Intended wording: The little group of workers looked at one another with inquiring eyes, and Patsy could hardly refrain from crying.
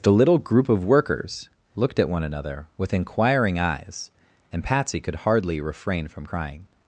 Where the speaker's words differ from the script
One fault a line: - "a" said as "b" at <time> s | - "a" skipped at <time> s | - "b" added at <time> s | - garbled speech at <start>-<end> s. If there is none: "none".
none